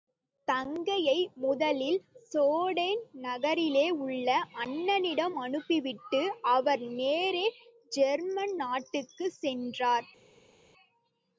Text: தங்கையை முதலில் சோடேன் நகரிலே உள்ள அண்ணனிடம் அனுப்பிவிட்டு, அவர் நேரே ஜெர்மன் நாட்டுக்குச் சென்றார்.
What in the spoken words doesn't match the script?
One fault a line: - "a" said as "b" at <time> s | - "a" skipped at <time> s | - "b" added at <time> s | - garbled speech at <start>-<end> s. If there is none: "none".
none